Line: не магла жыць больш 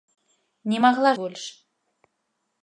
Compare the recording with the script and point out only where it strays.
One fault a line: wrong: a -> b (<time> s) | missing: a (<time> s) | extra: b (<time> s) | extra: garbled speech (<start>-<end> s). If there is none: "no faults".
missing: жыць (1.1 s)